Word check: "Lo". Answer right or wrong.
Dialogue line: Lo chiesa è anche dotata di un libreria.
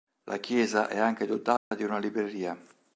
wrong